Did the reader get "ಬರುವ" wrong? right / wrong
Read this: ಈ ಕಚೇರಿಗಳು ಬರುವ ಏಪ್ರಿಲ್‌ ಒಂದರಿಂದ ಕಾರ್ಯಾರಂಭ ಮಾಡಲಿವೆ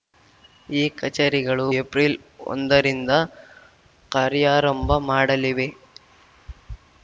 wrong